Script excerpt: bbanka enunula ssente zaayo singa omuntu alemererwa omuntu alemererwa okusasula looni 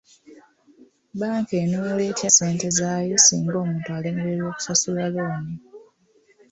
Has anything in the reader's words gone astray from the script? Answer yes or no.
yes